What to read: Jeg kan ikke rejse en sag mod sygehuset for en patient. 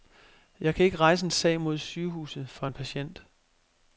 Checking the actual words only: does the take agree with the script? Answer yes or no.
yes